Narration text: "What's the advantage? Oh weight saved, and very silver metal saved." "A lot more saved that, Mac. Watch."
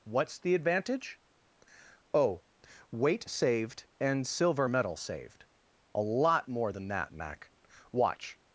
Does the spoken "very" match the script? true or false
false